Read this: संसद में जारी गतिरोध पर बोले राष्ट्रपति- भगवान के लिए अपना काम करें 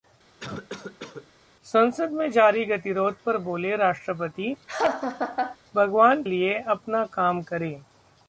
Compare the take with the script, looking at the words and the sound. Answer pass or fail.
fail